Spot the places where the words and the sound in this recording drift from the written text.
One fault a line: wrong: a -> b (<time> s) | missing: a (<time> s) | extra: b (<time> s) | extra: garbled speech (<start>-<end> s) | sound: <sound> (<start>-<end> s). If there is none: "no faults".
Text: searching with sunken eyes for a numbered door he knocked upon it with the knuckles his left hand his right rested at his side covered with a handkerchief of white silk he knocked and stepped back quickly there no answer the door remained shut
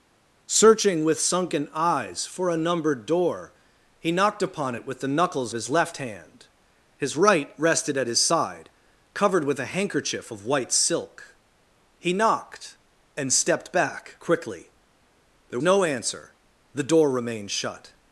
no faults